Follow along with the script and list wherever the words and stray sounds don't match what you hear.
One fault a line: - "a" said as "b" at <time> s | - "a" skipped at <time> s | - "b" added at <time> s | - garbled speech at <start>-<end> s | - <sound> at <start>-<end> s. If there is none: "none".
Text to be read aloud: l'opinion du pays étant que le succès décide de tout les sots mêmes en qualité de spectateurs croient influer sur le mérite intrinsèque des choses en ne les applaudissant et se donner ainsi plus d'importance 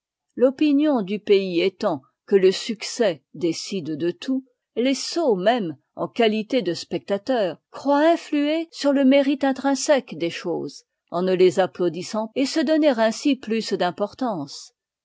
none